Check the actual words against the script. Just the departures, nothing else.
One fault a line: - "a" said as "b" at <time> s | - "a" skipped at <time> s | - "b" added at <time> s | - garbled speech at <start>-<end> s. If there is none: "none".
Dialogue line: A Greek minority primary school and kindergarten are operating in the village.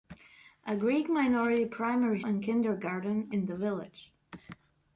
- "school" skipped at 2.2 s
- "are operating" skipped at 3.3 s